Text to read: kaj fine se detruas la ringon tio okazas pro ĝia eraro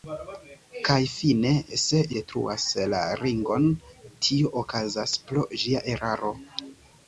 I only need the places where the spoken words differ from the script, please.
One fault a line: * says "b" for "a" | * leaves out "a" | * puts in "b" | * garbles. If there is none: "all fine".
all fine